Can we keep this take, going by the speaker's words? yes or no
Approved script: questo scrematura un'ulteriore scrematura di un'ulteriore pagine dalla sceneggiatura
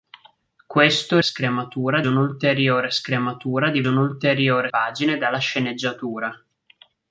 yes